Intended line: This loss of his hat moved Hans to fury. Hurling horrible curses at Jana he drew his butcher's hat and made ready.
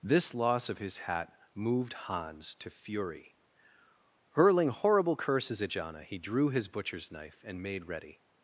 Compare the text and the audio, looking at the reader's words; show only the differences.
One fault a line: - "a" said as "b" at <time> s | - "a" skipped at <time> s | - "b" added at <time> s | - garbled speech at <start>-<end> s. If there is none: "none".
- "hat" said as "knife" at 7.1 s